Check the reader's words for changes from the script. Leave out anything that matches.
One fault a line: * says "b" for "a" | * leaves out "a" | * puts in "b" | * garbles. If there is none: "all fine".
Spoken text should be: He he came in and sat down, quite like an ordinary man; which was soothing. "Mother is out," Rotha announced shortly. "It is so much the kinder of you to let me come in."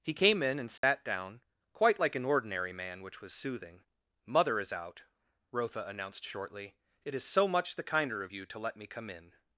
* leaves out "he"